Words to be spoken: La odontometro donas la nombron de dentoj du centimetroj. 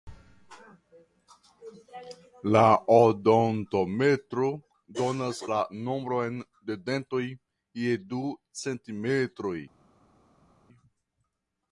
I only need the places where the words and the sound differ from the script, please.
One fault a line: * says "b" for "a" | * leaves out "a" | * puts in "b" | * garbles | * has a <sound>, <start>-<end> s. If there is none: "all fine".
* puts in "je"